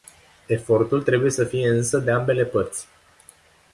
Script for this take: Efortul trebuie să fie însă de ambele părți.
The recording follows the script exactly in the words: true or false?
true